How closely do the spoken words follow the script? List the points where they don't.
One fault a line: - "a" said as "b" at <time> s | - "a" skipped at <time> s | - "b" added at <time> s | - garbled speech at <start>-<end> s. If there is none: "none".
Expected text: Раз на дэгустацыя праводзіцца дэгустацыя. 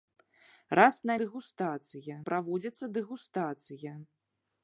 none